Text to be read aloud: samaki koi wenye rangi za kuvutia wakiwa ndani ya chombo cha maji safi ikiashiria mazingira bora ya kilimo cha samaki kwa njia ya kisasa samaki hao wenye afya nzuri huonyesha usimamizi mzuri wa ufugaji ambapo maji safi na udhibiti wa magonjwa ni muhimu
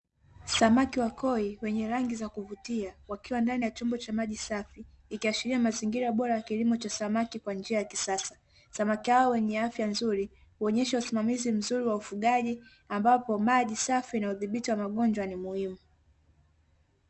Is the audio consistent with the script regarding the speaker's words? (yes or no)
no